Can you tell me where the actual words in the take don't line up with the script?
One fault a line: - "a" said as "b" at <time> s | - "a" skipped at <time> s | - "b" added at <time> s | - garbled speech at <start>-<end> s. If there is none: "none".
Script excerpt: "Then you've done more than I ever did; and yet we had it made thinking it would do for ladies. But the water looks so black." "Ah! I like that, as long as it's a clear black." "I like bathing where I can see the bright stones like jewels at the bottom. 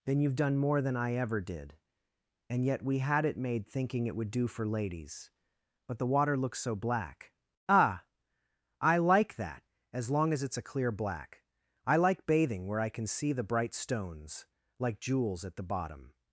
none